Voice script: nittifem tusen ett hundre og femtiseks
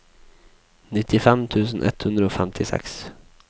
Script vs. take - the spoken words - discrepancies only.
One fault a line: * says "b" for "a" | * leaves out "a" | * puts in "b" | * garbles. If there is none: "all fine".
all fine